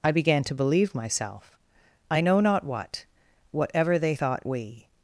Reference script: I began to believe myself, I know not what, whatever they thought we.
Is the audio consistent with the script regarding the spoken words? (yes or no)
yes